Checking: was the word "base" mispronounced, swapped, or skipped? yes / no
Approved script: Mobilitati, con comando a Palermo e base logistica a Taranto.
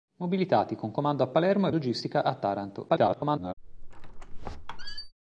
yes